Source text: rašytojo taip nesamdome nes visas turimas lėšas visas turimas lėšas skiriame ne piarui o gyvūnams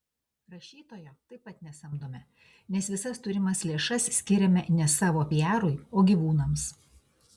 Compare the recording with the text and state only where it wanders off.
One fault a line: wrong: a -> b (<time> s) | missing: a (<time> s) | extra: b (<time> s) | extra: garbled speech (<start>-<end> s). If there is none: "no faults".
extra: pat (1.5 s)
missing: visas turimas lėšas (4.1 s)
extra: savo (5.0 s)